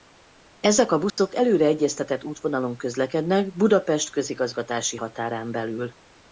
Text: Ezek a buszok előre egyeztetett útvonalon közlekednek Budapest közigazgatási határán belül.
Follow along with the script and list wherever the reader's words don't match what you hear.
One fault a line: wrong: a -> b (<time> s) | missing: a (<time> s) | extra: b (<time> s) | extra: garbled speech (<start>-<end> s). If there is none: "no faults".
no faults